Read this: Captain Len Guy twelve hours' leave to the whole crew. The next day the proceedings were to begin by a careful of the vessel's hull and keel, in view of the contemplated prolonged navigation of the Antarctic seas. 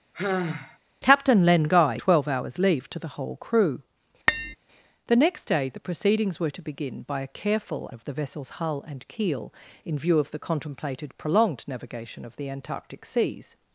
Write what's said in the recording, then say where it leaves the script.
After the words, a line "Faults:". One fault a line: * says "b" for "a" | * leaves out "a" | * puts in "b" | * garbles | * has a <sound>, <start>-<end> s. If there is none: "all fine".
Captain Len Guy twelve hours' leave to the whole crew. The next day the proceedings were to begin by a careful of the vessel's hull and keel, in view of the contemplated prolonged navigation of the Antarctic seas.
Faults:
* has a sigh, 0.1-0.8 s
* has a tap, 4.3-4.6 s